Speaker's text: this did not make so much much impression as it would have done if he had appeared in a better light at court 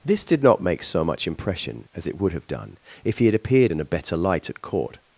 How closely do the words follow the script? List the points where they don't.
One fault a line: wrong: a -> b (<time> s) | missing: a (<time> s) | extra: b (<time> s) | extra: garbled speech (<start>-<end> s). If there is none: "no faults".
missing: much (1.3 s)